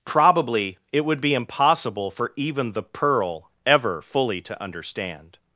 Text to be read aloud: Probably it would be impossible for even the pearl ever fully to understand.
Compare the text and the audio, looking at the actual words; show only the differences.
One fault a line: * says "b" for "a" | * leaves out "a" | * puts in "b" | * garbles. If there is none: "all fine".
all fine